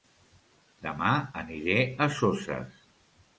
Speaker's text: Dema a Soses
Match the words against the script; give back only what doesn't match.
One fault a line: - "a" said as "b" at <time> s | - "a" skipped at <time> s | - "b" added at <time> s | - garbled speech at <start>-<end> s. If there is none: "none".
- "aniré" added at 1.4 s